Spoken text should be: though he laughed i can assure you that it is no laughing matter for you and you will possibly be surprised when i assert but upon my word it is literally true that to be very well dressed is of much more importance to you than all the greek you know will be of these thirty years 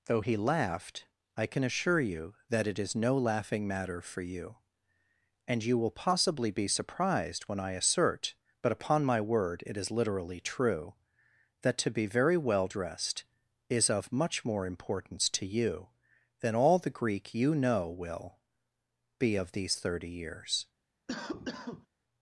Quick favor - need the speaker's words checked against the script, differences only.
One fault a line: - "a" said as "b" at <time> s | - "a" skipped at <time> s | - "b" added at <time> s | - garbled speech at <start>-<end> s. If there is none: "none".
none